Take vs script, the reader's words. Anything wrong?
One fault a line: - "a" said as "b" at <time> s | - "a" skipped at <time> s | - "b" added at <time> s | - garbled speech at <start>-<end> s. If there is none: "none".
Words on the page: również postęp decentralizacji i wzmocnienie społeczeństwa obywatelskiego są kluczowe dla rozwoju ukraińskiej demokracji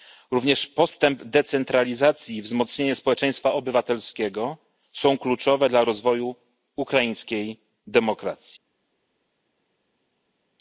none